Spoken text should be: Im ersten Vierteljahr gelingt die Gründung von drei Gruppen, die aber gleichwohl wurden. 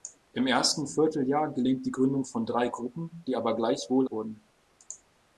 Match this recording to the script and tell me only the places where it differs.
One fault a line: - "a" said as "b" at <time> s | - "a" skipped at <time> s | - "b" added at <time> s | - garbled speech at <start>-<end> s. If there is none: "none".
none